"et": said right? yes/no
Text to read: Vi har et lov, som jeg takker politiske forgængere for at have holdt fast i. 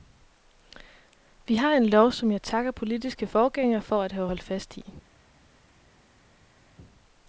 no